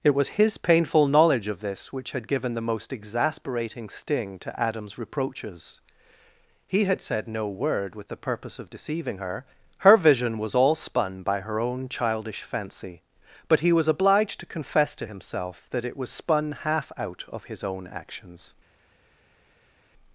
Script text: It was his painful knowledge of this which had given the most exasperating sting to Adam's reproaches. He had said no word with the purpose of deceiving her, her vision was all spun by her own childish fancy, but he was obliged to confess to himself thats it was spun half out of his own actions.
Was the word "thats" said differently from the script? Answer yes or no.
yes